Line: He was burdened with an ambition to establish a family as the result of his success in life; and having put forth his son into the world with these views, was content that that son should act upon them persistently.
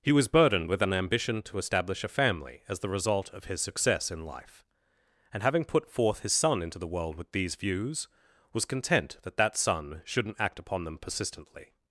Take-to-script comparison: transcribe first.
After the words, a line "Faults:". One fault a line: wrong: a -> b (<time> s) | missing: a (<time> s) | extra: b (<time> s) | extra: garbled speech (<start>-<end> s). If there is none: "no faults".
He was burdened with an ambition to establish a family as the result of his success in life; and having put forth his son into the world with these views, was content that that son shouldn't act upon them persistently.
Faults:
wrong: should -> shouldn't (10.0 s)